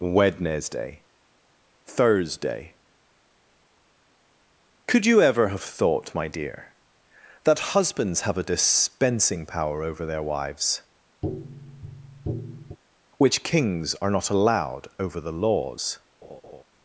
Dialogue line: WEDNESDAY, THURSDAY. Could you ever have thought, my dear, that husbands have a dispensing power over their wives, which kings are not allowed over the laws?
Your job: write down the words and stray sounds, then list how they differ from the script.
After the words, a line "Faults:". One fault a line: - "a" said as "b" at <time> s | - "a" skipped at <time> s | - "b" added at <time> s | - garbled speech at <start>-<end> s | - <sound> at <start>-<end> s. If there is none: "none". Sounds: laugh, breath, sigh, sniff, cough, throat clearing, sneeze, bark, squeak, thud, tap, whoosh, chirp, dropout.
WEDNESDAY, THURSDAY. Could you ever have thought, my dear, that husbands have a dispensing power over their wives, which kings are not allowed over the laws?
Faults:
- tap at 11.2-12.8 s
- laugh at 16.2-16.6 s